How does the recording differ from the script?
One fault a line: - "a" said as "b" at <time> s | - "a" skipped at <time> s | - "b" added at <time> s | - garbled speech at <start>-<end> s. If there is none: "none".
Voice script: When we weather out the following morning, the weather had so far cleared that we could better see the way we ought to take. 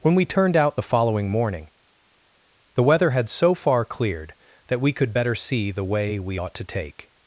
- "weather" said as "turned" at 0.2 s